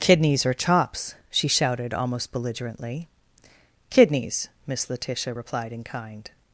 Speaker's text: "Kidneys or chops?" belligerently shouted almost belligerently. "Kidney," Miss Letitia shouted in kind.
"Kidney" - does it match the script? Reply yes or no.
no